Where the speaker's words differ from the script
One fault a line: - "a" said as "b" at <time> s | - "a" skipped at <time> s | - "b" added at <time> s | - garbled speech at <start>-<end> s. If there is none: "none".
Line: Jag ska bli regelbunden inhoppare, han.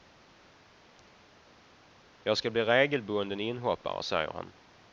- "säger" added at 4.0 s